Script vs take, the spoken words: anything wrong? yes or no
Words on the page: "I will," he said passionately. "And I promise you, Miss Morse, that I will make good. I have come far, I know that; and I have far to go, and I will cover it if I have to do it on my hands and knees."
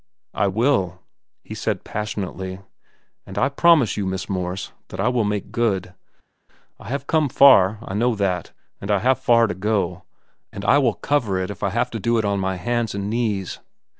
no